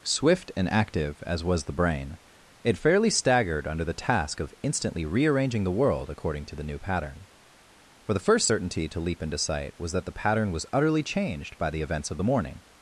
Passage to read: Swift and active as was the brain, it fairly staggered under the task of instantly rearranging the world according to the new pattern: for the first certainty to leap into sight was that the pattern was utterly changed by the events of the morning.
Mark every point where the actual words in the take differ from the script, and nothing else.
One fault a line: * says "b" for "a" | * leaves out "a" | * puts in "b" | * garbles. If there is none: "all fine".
all fine